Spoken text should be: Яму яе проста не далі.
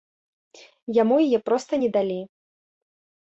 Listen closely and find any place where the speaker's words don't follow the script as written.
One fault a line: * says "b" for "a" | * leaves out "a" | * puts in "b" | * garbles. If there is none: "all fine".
all fine